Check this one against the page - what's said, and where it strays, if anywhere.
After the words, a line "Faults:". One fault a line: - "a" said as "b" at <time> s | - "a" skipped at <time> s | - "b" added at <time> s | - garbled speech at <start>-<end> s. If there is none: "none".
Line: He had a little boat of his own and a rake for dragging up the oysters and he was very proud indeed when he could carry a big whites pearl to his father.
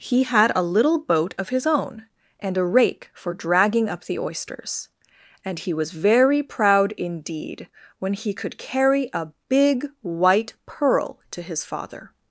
He had a little boat of his own and a rake for dragging up the oysters and he was very proud indeed when he could carry a big white pearl to his father.
Faults:
- "whites" said as "white" at 10.0 s